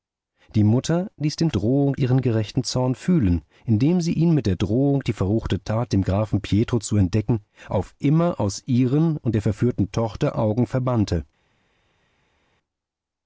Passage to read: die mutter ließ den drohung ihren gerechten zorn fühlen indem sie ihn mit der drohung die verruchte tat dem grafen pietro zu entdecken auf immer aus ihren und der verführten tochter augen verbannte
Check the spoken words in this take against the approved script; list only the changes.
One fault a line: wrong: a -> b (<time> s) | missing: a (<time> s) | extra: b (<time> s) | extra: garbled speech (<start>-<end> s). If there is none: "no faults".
no faults